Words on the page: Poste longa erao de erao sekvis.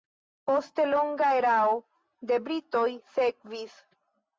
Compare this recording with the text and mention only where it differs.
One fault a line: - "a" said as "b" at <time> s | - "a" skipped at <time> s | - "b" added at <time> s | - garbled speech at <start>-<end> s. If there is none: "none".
- "erao" said as "britoj" at 2.5 s